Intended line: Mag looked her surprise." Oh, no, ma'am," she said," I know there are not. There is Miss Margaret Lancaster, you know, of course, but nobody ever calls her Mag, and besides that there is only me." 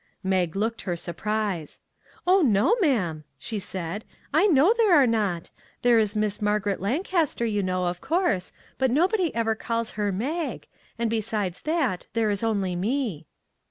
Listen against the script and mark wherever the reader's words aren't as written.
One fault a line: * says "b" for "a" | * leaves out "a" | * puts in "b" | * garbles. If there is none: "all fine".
all fine